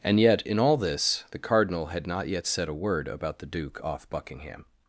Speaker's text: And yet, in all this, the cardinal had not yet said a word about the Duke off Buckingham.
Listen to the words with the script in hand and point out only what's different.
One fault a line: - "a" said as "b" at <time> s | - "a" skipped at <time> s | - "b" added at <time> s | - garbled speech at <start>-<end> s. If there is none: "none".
none